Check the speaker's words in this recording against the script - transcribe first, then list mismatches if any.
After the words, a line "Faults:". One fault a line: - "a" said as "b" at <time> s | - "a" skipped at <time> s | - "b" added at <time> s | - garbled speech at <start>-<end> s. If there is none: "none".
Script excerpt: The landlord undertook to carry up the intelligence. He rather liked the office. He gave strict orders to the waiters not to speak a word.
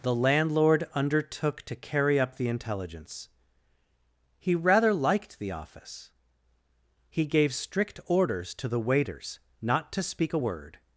The landlord undertook to carry up the intelligence. He rather liked the office. He gave strict orders to the waiters not to speak a word.
Faults:
none